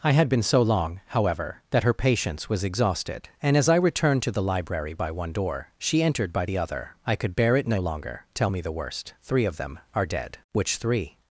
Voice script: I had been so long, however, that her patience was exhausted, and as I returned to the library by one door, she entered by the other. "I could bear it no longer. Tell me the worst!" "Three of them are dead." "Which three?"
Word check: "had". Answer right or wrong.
right